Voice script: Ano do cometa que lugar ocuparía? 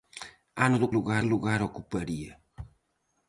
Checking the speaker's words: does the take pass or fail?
fail